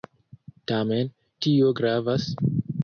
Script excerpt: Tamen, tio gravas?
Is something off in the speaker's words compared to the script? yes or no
no